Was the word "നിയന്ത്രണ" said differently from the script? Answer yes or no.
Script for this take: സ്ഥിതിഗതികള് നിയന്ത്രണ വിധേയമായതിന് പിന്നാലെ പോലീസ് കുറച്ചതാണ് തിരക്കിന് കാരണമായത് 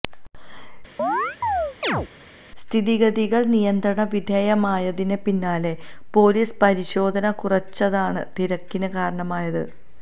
no